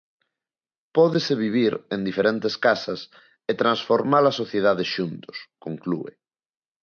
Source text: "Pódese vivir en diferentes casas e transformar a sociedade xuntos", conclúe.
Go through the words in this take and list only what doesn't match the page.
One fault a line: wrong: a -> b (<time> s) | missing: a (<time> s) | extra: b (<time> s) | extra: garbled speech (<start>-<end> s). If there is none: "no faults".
no faults